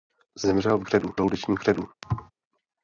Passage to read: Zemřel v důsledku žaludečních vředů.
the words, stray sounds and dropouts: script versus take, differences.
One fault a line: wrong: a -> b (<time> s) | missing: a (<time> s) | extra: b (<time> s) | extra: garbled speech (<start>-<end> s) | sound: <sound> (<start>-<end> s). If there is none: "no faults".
wrong: důsledku -> vředů (0.8 s)
sound: thud (2.0-2.3 s)